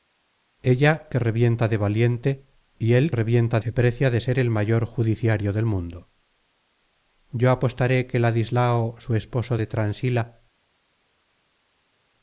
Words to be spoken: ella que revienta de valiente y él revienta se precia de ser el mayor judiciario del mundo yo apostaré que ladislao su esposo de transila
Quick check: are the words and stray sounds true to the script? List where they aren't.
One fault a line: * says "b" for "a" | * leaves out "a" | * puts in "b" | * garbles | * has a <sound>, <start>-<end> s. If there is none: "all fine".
all fine